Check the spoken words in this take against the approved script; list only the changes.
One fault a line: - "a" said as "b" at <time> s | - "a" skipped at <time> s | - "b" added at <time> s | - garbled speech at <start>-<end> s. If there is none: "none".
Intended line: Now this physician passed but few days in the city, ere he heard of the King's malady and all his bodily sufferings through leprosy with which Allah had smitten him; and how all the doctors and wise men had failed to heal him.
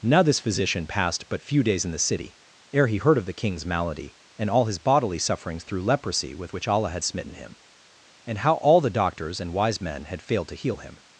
none